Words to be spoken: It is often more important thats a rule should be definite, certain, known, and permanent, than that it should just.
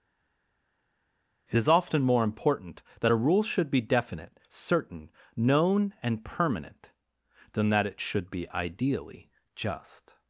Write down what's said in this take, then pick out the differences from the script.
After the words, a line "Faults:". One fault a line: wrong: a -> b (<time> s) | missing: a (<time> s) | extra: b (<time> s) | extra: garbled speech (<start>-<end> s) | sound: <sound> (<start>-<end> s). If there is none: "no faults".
It is often more important that a rule should be definite, certain, known, and permanent, than that it should be ideally just.
Faults:
wrong: thats -> that (3.0 s)
extra: be ideally (8.3 s)